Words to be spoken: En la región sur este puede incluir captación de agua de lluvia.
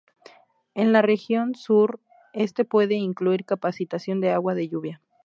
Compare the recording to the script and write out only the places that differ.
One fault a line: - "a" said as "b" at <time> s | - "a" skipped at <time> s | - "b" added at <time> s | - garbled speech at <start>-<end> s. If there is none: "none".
none